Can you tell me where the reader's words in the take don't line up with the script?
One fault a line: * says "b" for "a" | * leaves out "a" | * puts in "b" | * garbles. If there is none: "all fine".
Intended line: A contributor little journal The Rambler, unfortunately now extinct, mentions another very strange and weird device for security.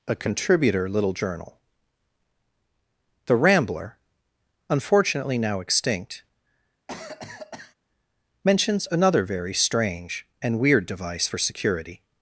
all fine